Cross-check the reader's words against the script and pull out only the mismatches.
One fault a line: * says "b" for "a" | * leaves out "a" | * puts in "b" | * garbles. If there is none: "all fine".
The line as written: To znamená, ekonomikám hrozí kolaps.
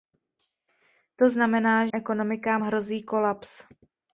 all fine